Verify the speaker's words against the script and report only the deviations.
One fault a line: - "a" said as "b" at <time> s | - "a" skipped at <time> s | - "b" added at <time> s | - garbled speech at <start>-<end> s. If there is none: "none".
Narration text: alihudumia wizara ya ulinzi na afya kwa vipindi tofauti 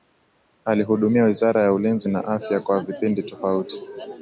none